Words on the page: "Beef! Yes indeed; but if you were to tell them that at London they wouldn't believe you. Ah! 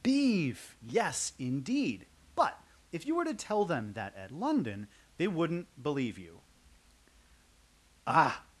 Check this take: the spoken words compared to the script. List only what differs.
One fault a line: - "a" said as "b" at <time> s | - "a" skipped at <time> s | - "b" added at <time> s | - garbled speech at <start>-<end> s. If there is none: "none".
none